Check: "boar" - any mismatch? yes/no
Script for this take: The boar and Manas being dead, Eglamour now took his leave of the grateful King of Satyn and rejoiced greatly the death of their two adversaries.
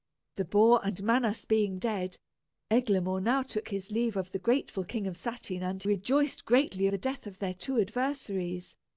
no